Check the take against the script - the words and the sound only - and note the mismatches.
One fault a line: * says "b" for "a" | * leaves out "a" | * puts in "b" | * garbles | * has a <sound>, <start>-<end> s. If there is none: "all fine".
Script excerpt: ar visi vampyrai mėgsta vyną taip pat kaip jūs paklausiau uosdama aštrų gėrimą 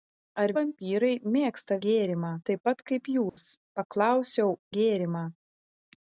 * leaves out "visi"
* says "gėrimą" for "vyną"
* has a dropout, 3.3-3.4 s
* leaves out "uosdama aštrų"